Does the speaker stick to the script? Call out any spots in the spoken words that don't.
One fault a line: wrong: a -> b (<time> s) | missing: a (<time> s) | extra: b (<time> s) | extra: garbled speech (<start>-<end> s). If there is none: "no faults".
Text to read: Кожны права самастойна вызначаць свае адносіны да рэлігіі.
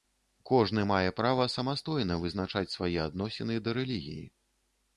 extra: мае (0.9 s)